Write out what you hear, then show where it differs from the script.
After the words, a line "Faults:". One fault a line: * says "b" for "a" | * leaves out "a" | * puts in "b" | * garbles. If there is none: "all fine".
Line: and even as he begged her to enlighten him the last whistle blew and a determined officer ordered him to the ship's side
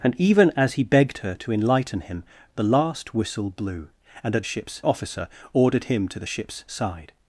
and even as he begged her to enlighten him the last whistle blew and a ship's officer ordered him to the ship's side
Faults:
* says "ship's" for "determined"